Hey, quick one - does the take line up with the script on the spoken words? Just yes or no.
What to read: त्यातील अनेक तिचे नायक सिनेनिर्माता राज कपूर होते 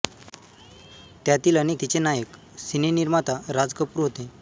yes